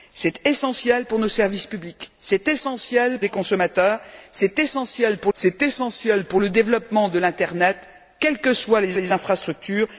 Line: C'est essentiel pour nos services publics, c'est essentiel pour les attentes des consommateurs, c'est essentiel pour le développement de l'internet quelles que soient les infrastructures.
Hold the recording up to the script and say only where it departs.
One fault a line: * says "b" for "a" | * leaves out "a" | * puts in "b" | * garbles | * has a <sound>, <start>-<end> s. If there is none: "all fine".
* says "des consommateurs c'est essentiel pour" for "pour les attentes des consommateurs"
* puts in "les"